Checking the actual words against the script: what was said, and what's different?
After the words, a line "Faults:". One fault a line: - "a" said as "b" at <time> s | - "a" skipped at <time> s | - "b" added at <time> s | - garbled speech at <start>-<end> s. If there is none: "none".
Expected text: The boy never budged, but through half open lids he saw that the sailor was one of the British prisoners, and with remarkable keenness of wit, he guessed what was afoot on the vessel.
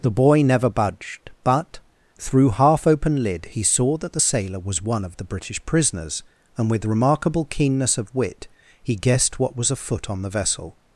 The boy never budged, but through half open lid he saw that the sailor was one of the British prisoners, and with remarkable keenness of wit, he guessed what was afoot on the vessel.
Faults:
- "lids" said as "lid" at 3.2 s